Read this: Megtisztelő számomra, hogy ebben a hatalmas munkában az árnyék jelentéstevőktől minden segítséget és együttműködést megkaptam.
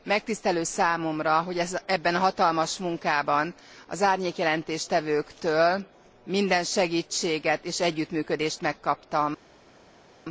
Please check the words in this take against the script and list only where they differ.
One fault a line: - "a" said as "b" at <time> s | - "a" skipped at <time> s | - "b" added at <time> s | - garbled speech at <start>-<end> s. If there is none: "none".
none